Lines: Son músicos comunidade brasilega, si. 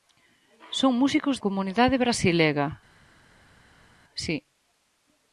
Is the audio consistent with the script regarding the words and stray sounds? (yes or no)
yes